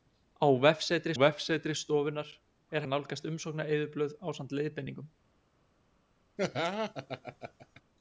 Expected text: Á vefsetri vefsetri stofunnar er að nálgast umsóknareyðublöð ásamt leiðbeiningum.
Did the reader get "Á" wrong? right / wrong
right